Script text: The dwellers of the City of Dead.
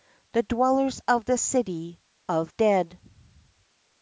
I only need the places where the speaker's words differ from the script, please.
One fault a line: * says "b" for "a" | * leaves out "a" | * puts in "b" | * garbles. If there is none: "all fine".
all fine